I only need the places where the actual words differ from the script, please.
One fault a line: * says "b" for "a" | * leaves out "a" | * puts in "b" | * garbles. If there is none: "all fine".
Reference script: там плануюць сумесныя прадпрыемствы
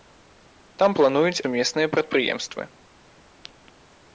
all fine